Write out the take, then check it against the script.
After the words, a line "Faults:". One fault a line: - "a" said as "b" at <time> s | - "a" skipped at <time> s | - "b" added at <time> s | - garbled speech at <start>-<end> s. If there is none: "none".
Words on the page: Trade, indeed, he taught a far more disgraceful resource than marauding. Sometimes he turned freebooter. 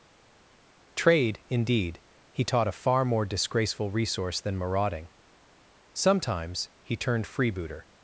Trade, indeed, he taught a far more disgraceful resource than marauding. Sometimes he turned freebooter.
Faults:
none